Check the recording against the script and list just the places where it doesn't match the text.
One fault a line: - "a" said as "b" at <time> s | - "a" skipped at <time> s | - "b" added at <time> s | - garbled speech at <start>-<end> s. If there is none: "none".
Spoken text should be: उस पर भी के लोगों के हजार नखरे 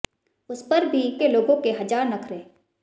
none